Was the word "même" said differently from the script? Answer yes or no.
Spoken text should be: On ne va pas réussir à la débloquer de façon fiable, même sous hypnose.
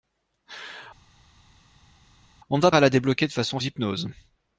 yes